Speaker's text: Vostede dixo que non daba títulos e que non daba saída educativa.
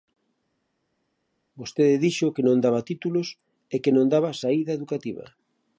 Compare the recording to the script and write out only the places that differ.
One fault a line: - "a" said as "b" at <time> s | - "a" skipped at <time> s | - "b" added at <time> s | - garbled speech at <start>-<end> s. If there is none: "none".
none